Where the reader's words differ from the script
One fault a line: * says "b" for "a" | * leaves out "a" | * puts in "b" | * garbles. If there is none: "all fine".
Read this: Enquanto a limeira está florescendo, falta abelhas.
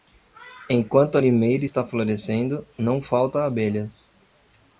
* puts in "não"